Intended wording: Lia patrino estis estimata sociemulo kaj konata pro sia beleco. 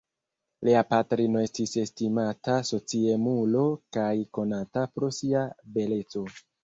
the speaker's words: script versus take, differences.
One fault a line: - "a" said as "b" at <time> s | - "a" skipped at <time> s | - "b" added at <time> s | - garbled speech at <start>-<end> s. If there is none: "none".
none